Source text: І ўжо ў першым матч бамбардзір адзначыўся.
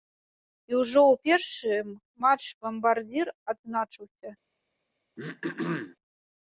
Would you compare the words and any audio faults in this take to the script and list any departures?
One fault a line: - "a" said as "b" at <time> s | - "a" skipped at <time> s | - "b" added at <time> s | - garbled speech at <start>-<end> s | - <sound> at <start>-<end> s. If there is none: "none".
- throat clearing at 5.2-6.0 s